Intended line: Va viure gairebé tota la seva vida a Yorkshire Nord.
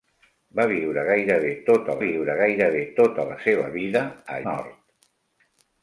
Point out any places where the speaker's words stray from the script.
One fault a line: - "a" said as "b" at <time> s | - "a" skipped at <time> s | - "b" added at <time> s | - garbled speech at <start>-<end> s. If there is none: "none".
- "viure gairebé tota" added at 2.0 s
- "Yorkshire" skipped at 4.4 s